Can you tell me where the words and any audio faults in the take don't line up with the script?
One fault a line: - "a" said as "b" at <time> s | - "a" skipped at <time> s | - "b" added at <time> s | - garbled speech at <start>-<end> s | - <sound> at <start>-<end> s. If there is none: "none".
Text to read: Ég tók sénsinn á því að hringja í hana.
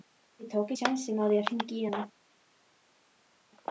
none